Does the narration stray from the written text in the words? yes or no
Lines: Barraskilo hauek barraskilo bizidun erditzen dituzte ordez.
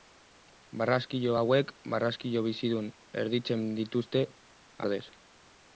no